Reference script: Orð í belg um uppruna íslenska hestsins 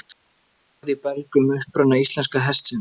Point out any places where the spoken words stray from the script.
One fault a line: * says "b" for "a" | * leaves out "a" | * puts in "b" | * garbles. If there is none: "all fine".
all fine